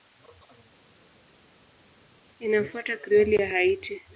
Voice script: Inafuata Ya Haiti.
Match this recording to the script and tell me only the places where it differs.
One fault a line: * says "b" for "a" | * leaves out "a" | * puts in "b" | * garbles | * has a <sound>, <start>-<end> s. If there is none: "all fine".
* puts in "Krioli"